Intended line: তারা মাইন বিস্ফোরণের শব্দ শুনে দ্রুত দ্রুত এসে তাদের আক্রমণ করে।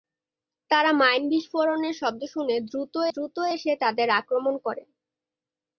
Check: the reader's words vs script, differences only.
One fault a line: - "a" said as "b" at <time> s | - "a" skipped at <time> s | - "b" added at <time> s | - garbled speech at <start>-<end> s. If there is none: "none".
none